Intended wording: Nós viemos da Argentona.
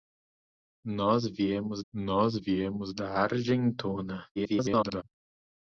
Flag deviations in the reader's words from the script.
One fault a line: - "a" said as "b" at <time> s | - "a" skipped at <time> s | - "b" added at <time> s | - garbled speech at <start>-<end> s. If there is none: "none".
- "nós viemos" added at 1.9 s
- garbled speech at 4.4-5.0 s